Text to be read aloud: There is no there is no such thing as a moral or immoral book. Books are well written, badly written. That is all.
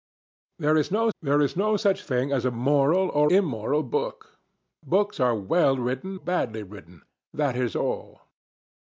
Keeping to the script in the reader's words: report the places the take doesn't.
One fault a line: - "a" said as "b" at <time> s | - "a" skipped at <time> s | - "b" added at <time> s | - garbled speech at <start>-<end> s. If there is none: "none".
none